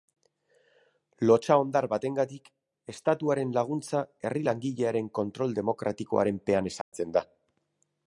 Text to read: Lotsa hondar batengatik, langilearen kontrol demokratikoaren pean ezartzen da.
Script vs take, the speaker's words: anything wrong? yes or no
yes